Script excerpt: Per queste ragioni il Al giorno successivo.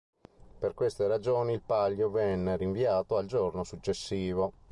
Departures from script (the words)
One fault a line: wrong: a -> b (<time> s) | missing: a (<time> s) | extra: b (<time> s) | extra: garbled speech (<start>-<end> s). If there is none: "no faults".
extra: Palio venne rinviato (1.6 s)